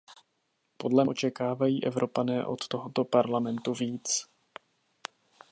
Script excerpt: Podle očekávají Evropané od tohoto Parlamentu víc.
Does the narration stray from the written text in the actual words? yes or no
no